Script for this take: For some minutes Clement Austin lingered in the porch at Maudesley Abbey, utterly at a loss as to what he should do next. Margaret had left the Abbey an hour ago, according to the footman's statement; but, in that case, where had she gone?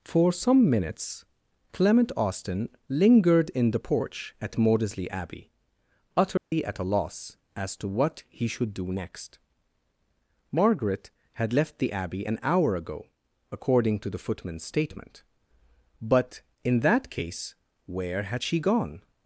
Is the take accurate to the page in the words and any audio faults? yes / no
no